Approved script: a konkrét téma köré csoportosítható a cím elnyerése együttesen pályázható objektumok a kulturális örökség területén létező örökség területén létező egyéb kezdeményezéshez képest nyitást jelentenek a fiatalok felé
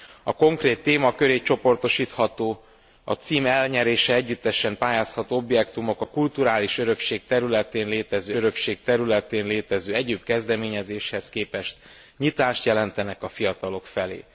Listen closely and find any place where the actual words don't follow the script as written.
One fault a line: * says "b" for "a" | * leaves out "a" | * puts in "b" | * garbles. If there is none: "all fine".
all fine